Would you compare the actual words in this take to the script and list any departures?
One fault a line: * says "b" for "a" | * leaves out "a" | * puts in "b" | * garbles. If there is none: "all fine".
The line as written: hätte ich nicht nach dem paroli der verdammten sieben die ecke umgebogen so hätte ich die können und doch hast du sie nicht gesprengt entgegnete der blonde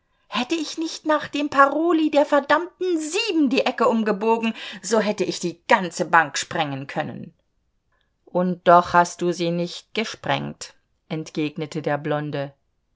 * puts in "ganze bank sprengen"